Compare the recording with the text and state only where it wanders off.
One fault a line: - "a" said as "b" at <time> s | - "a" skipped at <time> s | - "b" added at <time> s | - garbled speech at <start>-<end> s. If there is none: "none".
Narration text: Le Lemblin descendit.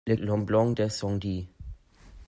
none